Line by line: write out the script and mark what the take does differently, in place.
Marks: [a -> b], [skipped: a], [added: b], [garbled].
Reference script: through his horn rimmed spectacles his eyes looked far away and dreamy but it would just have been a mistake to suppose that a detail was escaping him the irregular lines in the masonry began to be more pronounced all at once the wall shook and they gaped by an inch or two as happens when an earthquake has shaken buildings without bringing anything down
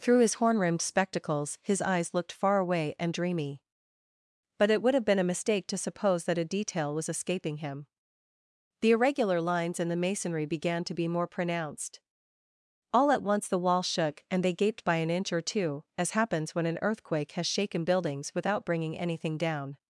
through his horn rimmed spectacles his eyes looked far away and dreamy but it would [skipped: just] have been a mistake to suppose that a detail was escaping him the irregular lines in the masonry began to be more pronounced all at once the wall shook and they gaped by an inch or two as happens when an earthquake has shaken buildings without bringing anything down